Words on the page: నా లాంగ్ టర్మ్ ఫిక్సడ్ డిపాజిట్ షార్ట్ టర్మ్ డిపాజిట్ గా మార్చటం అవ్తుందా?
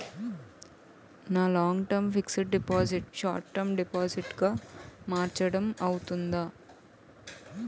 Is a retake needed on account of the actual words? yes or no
no